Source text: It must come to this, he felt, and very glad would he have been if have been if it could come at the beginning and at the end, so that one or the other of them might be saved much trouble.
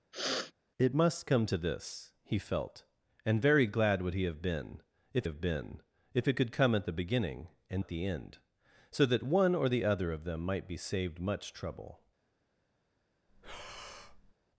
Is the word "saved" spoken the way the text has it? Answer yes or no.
yes